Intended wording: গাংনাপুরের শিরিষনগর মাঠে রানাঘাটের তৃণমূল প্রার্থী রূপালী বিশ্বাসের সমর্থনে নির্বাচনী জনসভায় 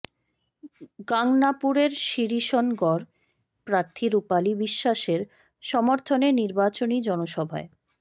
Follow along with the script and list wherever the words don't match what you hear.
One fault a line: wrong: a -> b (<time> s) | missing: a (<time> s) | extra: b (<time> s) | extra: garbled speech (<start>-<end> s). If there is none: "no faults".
missing: মাঠে রানাঘাটের তৃণমূল (3.0 s)